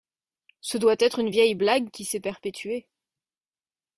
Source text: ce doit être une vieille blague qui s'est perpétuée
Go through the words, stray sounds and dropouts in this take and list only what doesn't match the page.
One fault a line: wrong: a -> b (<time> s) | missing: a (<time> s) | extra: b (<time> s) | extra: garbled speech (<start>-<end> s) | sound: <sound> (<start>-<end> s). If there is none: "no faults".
no faults